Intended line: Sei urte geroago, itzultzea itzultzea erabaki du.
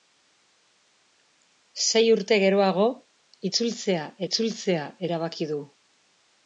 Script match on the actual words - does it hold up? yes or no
yes